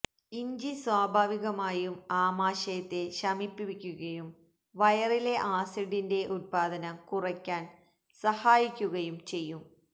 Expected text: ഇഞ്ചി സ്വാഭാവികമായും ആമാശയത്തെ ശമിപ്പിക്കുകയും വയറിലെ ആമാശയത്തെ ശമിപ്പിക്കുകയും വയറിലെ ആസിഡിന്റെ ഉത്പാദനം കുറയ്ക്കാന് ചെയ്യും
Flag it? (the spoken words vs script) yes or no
yes